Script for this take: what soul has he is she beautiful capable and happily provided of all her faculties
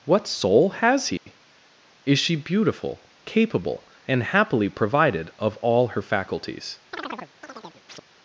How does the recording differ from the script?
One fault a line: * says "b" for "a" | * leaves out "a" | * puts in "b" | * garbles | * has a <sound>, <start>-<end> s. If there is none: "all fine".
* has a dropout, 1.2-1.3 s
* has a chirp, 6.9-8.0 s